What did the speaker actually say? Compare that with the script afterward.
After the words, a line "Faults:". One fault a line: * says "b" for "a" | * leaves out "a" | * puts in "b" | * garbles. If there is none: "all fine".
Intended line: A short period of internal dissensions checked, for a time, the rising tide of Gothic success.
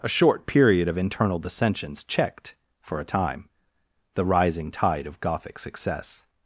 A short period of internal dissensions checked, for a time, the rising tide of Gothic success.
Faults:
all fine